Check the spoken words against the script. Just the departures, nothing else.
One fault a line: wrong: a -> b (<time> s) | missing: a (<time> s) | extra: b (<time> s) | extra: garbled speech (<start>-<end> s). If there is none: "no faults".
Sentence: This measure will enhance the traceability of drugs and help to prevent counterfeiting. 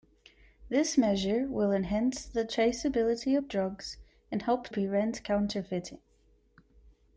missing: to (4.7 s)